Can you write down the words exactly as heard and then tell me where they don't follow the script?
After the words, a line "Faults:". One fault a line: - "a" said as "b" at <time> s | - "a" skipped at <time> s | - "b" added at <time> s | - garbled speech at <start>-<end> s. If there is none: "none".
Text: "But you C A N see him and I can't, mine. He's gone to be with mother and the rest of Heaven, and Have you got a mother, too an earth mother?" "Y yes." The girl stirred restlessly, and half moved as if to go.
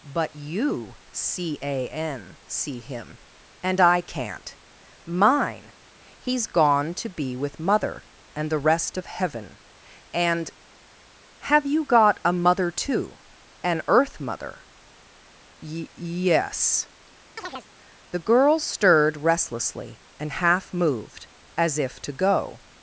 "But you C A N see him and I can't, mine. He's gone to be with mother and the rest of Heaven, and Have you got a mother, too an earth mother?" "Y yes." The girl stirred restlessly, and half moved as if to go.
Faults:
none